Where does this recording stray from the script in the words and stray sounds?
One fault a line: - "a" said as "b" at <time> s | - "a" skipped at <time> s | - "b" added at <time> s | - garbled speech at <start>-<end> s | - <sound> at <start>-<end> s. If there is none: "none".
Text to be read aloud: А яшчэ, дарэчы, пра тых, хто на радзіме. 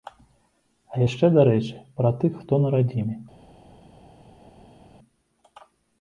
none